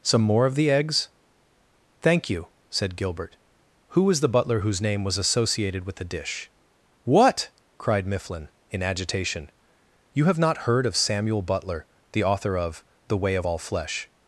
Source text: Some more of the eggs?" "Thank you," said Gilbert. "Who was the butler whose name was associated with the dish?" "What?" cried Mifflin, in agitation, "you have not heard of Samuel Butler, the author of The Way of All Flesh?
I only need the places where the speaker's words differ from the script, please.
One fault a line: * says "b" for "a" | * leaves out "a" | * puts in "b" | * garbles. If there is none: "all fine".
all fine